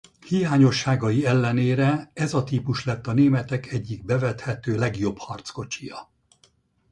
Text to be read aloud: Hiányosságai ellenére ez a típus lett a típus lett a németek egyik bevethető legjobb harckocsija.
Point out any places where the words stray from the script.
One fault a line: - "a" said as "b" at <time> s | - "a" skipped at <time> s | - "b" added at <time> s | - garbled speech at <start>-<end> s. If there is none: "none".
- "típus lett a" skipped at 3.1 s